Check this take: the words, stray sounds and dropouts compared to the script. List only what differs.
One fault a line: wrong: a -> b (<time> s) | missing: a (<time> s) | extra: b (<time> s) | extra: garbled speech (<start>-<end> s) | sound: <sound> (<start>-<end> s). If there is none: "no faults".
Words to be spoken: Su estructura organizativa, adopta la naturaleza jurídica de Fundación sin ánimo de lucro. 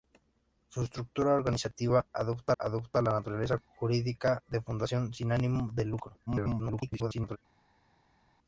extra: adopta (2.6 s)
extra: garbled speech (6.3-7.4 s)